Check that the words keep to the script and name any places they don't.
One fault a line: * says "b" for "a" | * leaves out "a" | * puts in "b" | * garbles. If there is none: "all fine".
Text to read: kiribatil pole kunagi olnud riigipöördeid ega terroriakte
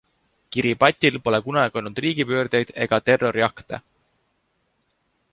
all fine